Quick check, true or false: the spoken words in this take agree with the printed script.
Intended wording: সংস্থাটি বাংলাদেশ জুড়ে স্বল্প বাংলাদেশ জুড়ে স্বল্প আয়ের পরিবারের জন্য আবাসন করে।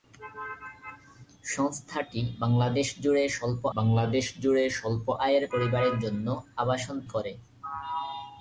true